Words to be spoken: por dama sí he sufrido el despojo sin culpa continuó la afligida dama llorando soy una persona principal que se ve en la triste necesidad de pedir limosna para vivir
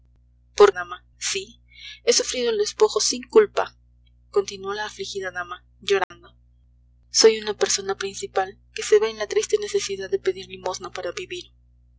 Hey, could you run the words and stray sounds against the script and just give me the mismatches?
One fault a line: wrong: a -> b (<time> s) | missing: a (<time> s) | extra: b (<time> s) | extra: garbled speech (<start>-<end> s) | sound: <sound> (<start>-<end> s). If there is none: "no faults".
sound: dropout (6.0-6.1 s)